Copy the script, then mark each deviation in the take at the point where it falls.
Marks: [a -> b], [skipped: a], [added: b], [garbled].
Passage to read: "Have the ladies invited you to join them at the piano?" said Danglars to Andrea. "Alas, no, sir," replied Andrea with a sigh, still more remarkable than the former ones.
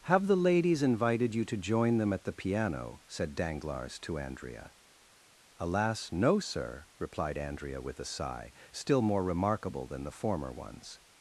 "Have the ladies invited you to join them at the piano?" said Danglars to Andrea. "Alas, no, sir," replied Andrea with a sigh, still more remarkable than the former ones.